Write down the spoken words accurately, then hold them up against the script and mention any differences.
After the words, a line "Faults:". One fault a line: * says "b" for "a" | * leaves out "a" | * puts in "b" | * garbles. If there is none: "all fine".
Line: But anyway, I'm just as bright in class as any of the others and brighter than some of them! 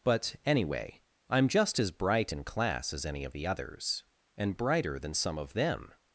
But anyway, I'm just as bright in class as any of the others and brighter than some of them!
Faults:
all fine